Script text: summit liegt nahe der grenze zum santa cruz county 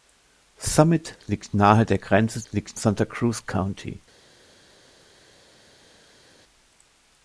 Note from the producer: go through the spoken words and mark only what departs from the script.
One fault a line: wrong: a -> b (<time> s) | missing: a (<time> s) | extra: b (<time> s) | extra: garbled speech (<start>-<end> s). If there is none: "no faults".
wrong: zum -> liegt (2.5 s)